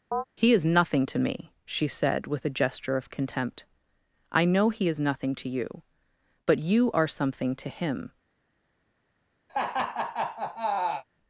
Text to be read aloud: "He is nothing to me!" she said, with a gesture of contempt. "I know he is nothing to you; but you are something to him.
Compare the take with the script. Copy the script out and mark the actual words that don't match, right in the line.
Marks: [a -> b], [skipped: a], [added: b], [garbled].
"He is nothing to me!" she said, with a gesture of contempt. "I know he is nothing to you; but you are something to him.